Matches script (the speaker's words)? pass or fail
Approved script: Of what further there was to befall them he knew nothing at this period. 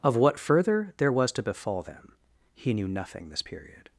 fail